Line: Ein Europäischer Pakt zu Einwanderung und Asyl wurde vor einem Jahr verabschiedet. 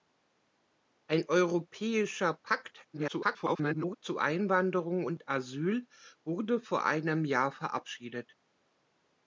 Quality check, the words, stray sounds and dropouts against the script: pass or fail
fail